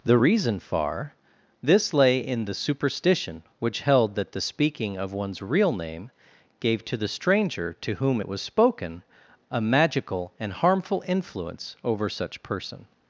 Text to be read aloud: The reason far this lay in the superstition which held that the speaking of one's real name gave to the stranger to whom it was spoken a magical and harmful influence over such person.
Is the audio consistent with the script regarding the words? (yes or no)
yes